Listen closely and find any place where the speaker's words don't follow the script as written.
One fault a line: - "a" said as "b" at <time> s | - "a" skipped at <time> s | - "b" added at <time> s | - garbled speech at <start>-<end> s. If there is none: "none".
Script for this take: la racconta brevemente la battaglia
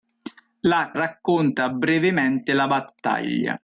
none